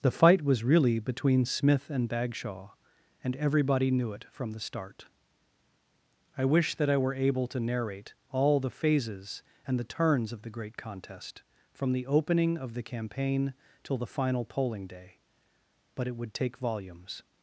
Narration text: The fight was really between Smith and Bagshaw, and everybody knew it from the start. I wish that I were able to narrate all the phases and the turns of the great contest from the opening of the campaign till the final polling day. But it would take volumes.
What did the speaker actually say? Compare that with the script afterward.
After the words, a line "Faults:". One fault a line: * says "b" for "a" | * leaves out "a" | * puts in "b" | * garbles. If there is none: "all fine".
The fight was really between Smith and Bagshaw, and everybody knew it from the start. I wish that I were able to narrate all the phases and the turns of the great contest from the opening of the campaign till the final polling day. But it would take volumes.
Faults:
all fine